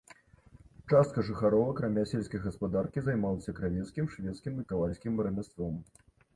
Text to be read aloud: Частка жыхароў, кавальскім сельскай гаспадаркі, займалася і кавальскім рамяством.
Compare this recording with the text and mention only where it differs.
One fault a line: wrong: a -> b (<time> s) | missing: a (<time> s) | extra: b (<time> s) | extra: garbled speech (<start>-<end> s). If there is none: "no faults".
wrong: кавальскім -> акрамя (1.7 s)
extra: кравецкім швецкім (3.6 s)